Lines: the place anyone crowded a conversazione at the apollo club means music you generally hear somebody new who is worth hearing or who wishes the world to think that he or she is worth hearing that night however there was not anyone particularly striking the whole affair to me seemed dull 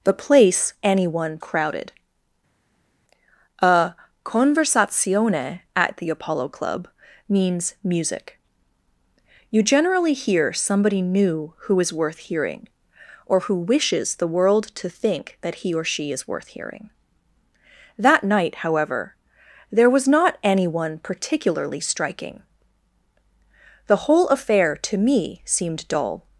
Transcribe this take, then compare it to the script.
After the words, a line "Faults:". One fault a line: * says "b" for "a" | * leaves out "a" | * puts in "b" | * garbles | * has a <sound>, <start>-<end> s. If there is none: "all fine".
the place anyone crowded a conversazione at the apollo club means music you generally hear somebody new who is worth hearing or who wishes the world to think that he or she is worth hearing that night however there was not anyone particularly striking the whole affair to me seemed dull
Faults:
all fine